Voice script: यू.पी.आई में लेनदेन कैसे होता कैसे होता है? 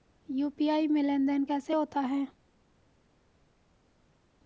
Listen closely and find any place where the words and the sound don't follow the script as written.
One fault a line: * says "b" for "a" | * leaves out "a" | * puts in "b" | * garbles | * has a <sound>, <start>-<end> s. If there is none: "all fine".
* leaves out "कैसे होता"